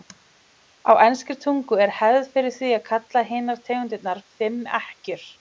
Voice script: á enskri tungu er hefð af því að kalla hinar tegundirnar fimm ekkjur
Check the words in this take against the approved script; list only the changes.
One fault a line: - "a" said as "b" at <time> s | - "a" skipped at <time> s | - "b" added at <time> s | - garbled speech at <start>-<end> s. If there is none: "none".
- "af" said as "fyrir" at 2.4 s